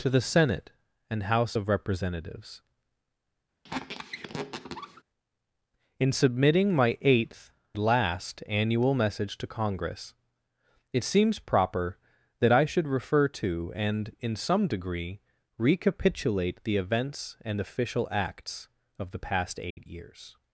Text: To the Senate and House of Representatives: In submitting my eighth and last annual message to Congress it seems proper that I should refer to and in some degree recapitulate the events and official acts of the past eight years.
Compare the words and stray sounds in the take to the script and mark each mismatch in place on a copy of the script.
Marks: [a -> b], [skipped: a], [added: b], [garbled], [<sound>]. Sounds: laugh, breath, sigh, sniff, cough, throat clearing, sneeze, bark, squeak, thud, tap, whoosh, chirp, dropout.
To the Senate and House of Representatives: [squeak] In submitting my eighth [skipped: and] last annual message to Congress it seems proper that I should refer to and in some degree recapitulate the events and official acts of the past eight [dropout] years.